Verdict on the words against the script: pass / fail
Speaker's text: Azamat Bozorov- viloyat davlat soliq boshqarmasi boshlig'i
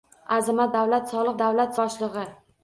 fail